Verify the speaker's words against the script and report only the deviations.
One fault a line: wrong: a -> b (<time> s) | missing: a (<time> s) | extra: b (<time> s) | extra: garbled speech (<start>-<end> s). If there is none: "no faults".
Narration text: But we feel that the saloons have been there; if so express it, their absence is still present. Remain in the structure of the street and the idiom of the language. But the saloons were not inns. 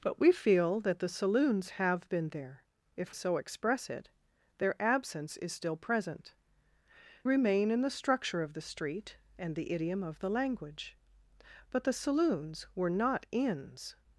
no faults